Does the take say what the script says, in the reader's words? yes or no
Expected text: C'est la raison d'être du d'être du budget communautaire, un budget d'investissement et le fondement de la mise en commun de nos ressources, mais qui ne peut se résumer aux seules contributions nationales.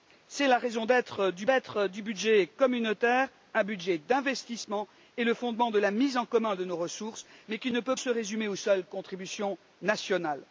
yes